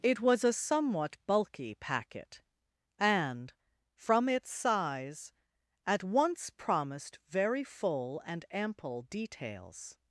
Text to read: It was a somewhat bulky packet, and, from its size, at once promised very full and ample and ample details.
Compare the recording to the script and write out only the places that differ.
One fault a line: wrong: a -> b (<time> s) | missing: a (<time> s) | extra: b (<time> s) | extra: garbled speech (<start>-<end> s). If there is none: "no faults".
missing: and ample (9.0 s)